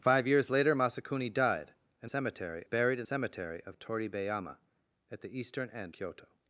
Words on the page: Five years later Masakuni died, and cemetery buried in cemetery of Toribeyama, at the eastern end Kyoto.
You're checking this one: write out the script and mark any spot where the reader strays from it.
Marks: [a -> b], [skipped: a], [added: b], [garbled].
Five years later Masakuni died, and cemetery buried in cemetery of Toribeyama, at the eastern end Kyoto.